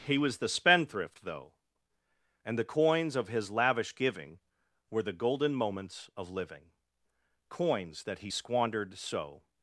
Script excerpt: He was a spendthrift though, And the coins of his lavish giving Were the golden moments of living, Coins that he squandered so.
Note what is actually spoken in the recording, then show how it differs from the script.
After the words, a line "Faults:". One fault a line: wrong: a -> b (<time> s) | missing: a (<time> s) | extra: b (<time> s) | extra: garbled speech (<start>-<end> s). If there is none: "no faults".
He was the spendthrift though, And the coins of his lavish giving Were the golden moments of living, Coins that he squandered so.
Faults:
wrong: a -> the (0.4 s)